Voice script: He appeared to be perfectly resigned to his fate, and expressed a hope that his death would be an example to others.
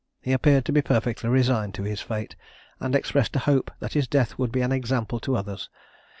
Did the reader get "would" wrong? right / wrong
right